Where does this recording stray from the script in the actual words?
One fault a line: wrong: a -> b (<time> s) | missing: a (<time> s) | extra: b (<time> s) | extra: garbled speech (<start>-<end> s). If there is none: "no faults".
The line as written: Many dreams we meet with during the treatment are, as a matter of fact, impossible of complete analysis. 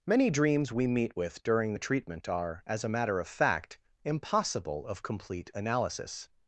no faults